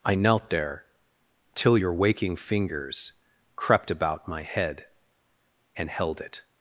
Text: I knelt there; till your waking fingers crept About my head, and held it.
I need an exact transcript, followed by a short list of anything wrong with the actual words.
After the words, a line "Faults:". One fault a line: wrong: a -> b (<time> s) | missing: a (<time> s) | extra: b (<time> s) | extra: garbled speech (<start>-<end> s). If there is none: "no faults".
I knelt there; till your waking fingers crept About my head, and held it.
Faults:
no faults